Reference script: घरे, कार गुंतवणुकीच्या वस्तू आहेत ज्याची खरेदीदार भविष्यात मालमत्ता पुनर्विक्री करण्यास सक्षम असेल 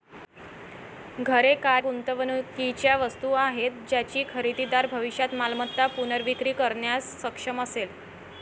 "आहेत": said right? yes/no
yes